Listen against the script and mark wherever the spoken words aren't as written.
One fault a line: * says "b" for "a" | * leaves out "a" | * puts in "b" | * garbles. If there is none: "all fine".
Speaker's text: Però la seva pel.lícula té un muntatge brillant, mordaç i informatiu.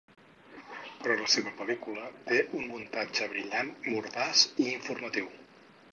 all fine